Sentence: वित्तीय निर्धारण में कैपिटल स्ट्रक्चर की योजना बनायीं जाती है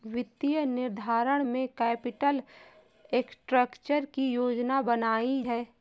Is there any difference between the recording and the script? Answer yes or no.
yes